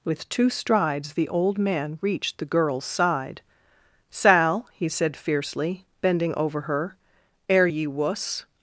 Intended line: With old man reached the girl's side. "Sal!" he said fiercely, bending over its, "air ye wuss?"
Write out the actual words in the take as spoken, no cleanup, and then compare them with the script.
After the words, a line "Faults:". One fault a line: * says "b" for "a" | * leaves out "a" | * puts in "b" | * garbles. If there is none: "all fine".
With two strides the old man reached the girl's side. "Sal!" he said fiercely, bending over her, "air ye wuss?"
Faults:
* puts in "two strides the"
* says "her" for "its"